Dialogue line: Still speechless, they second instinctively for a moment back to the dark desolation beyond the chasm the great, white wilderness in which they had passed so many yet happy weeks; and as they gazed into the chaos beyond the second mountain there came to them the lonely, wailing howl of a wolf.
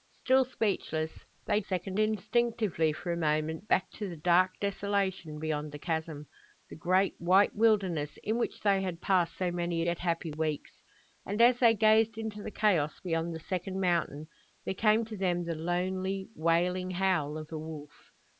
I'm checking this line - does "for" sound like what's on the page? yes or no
yes